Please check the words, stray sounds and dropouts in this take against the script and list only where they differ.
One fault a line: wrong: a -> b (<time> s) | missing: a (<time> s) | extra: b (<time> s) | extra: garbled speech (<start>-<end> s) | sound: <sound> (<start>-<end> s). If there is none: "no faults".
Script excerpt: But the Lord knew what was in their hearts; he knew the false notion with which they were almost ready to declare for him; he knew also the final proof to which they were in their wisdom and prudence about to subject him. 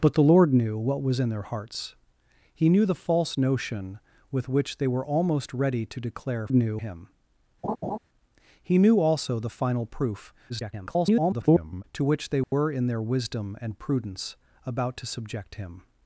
wrong: for -> knew (6.5 s)
sound: laugh (7.6-8.0 s)
extra: garbled speech (10.5-11.8 s)
sound: dropout (12.4-12.5 s)